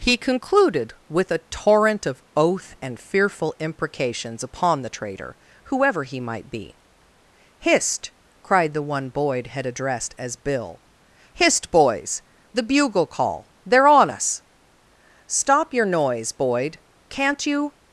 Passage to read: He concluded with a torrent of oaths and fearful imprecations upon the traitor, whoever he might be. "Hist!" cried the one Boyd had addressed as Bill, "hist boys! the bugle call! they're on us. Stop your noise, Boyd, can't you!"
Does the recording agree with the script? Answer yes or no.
no